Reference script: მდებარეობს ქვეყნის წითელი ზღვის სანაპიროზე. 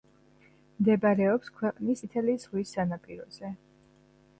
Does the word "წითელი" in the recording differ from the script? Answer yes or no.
no